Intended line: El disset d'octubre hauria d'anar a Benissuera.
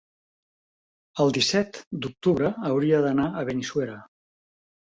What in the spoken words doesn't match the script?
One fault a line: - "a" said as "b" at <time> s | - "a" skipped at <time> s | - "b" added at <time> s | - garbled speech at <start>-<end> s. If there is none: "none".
none